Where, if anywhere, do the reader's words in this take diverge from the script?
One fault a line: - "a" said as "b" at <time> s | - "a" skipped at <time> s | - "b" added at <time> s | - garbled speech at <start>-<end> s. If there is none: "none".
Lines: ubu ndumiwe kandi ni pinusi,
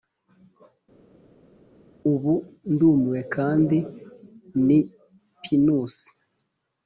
none